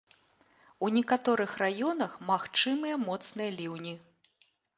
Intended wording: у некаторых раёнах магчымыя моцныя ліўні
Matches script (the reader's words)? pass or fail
pass